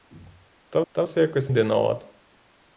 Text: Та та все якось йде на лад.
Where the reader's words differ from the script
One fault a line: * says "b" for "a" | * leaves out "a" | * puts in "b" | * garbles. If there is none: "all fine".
all fine